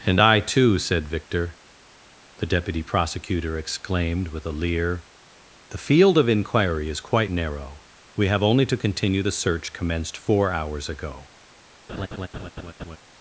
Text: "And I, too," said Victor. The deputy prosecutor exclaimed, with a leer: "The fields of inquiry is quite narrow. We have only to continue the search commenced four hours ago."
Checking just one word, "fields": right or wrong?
wrong